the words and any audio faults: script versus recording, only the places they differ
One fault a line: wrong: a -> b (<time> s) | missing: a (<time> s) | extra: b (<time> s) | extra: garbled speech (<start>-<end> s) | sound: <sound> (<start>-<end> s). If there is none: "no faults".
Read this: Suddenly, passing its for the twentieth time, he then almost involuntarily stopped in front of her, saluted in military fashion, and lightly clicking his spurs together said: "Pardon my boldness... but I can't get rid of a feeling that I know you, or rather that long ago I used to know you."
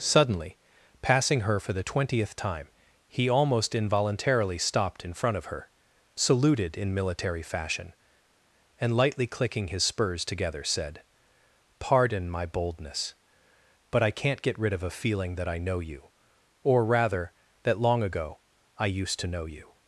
wrong: its -> her (1.4 s)
missing: then (3.3 s)